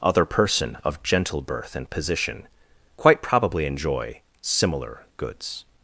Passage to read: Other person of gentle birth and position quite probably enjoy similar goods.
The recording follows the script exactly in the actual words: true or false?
true